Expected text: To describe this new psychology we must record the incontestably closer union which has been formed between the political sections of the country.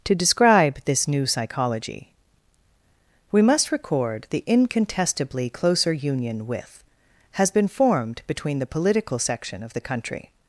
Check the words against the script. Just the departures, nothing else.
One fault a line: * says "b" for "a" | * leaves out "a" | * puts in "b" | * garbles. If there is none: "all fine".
* says "with" for "which"
* says "section" for "sections"